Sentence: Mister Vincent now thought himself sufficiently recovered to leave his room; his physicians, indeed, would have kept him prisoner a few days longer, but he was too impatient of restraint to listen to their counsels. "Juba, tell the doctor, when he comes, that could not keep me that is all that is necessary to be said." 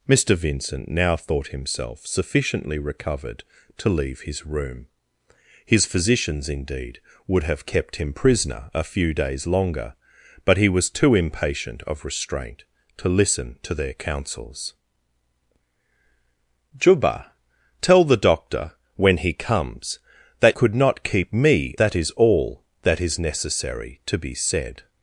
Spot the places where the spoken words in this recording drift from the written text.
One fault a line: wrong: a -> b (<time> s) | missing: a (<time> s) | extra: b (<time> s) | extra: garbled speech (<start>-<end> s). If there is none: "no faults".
no faults